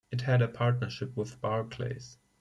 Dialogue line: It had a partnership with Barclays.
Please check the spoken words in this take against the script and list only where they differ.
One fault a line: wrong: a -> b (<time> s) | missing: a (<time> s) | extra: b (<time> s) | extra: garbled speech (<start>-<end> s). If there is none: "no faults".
no faults